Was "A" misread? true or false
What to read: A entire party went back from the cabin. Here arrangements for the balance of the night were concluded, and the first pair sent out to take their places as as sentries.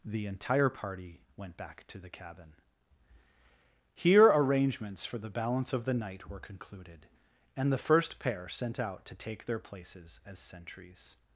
true